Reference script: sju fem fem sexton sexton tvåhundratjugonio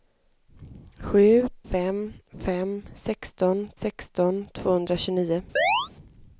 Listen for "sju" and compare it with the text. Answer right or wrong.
right